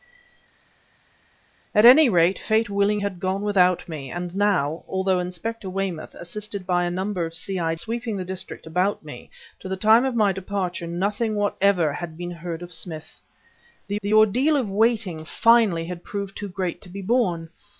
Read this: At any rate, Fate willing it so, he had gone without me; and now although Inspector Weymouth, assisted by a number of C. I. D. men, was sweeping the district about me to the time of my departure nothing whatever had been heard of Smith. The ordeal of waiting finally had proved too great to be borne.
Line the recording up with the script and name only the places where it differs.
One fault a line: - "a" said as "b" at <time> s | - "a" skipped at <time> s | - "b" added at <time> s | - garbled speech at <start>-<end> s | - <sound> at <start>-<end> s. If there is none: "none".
- "it so he" skipped at 3.0 s
- "D men was" skipped at 7.7 s
- "the" added at 14.0 s